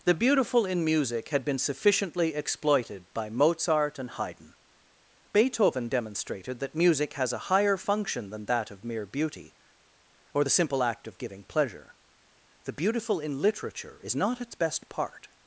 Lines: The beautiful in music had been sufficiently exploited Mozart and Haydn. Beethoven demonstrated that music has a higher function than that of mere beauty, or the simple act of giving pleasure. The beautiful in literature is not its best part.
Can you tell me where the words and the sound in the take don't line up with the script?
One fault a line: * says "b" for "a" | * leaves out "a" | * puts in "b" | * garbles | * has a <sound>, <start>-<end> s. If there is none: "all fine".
* puts in "by"